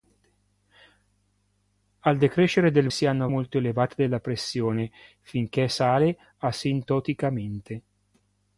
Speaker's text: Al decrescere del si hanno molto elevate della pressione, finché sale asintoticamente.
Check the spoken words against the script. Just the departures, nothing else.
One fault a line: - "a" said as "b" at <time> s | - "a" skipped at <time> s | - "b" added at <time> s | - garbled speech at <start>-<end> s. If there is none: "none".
none